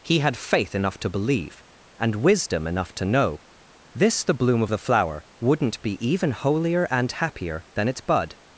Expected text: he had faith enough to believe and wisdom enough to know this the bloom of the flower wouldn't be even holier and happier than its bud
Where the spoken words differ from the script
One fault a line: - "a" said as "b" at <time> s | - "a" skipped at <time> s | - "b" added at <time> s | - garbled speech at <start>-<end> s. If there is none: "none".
none